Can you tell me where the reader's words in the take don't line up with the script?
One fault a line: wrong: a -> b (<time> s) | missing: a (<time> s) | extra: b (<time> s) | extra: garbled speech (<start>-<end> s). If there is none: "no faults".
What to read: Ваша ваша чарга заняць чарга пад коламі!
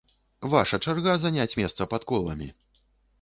missing: ваша (0.8 s)
wrong: чарга -> месца (1.6 s)